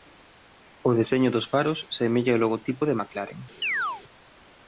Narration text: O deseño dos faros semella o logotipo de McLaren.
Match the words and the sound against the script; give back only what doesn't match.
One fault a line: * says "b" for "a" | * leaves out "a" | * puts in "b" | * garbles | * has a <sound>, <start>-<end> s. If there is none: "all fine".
* has a chirp, 3.6-4.0 s